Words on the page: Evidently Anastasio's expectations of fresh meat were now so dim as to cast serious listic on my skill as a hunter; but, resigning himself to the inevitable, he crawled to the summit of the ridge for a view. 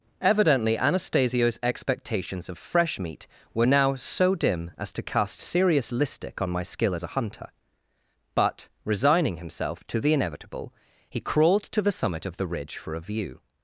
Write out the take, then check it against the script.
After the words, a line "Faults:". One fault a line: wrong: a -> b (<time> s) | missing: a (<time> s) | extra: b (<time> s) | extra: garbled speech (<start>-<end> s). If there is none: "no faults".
Evidently Anastasio's expectations of fresh meat were now so dim as to cast serious listic on my skill as a hunter; but, resigning himself to the inevitable, he crawled to the summit of the ridge for a view.
Faults:
no faults